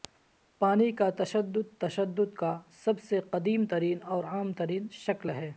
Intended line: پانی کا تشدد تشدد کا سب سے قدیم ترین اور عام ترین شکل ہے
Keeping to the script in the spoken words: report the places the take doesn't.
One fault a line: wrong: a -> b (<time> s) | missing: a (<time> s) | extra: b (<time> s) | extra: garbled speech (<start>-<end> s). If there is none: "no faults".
no faults